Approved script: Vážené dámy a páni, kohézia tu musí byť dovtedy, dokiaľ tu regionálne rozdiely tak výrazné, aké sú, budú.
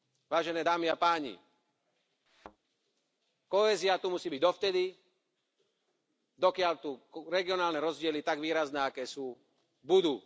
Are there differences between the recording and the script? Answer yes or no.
no